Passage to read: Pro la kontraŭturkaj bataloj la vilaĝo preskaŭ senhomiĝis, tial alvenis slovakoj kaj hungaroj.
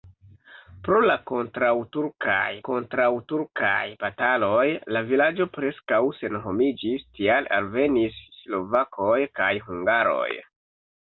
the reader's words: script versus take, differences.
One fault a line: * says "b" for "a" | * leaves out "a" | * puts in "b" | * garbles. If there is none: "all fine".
* puts in "kontraŭturkaj"